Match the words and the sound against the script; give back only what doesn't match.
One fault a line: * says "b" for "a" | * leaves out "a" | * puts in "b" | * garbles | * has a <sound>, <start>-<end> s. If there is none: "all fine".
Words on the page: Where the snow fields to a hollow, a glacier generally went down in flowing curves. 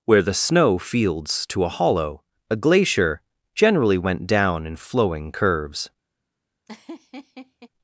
* has a laugh, 6.7-7.7 s